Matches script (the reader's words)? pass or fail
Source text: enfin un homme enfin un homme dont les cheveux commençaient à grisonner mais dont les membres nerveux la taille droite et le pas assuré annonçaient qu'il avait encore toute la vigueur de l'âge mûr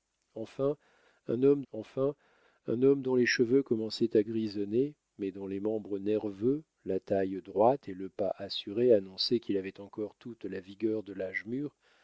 pass